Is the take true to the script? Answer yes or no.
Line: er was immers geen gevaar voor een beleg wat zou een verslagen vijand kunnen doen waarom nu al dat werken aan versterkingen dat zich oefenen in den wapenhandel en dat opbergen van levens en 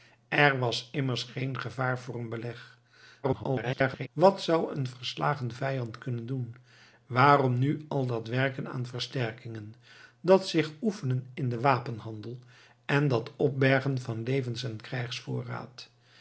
no